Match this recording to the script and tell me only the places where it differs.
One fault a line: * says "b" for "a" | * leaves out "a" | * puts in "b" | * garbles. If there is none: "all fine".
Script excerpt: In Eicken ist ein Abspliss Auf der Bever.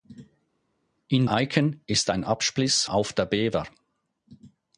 all fine